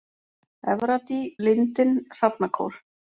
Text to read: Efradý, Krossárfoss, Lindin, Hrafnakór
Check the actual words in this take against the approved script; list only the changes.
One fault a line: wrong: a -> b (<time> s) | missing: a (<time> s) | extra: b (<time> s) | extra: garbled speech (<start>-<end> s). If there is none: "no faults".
missing: Krossárfoss (1.2 s)